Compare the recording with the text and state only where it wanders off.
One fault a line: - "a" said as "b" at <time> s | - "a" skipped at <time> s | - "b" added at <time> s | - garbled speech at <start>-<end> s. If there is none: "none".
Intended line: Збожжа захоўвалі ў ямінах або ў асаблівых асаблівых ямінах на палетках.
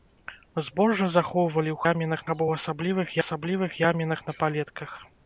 none